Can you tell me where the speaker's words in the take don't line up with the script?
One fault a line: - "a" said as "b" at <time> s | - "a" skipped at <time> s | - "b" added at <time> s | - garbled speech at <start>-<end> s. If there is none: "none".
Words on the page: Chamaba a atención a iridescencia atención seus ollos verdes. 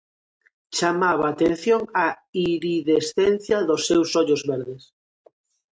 - "atención" said as "dos" at 3.7 s